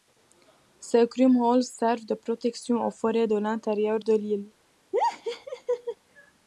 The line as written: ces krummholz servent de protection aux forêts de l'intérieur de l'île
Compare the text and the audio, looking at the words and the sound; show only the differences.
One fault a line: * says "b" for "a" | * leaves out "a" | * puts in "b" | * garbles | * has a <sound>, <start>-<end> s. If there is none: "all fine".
* has a laugh, 4.9-6.0 s